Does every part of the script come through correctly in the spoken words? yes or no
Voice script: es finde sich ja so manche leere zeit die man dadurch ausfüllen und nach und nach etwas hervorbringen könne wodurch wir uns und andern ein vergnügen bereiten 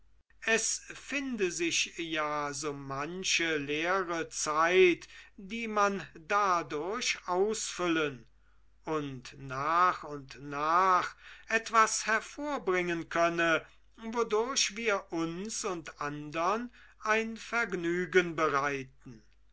yes